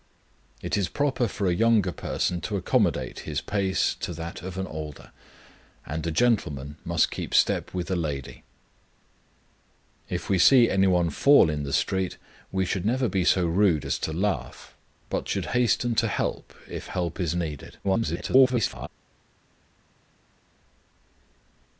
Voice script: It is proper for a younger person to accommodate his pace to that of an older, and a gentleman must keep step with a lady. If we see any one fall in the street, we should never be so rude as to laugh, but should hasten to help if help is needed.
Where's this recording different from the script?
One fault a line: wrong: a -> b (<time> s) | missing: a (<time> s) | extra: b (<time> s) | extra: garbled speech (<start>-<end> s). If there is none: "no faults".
extra: garbled speech (17.8-18.9 s)